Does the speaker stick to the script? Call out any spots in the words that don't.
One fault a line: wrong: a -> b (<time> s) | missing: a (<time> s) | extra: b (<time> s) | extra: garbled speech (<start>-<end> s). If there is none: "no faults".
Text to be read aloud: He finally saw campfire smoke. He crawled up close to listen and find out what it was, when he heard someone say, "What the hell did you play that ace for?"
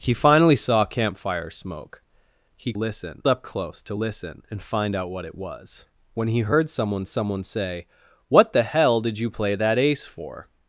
wrong: crawled -> listen (2.7 s)
extra: someone (7.1 s)